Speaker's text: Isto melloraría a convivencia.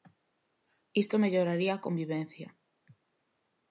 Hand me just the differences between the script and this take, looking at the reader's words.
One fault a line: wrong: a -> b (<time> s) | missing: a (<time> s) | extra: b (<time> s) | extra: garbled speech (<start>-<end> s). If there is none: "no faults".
no faults